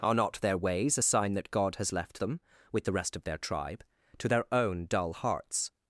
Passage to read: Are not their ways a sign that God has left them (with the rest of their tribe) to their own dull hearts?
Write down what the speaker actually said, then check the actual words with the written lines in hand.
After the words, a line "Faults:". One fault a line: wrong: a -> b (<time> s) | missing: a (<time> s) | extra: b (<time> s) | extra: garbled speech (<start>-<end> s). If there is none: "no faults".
Are not their ways a sign that God has left them (with the rest of their tribe) to their own dull hearts?
Faults:
no faults